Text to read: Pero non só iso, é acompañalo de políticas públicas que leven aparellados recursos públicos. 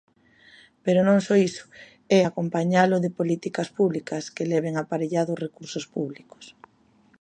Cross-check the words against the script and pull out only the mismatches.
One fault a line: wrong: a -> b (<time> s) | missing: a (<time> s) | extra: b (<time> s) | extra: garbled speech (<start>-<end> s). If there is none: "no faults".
no faults